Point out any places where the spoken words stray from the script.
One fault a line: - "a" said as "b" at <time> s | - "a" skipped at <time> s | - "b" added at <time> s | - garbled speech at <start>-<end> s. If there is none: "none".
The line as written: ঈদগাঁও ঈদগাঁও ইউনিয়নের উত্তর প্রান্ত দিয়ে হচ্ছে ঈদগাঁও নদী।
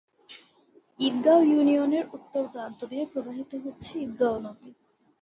- "ঈদগাঁও" skipped at 1.4 s
- "প্রবাহিত" added at 3.0 s